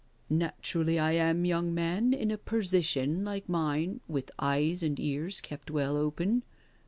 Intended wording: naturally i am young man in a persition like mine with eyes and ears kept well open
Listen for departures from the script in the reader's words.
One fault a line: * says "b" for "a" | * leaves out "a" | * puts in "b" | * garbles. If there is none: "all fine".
all fine